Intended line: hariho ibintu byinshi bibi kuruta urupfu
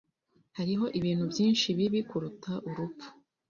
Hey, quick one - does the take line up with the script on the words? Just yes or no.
yes